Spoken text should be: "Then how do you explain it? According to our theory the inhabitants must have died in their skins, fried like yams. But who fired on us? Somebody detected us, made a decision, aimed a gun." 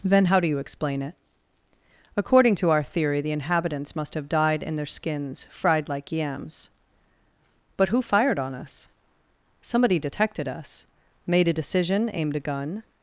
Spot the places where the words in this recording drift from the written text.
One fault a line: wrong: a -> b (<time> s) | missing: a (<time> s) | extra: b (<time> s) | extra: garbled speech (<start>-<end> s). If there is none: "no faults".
no faults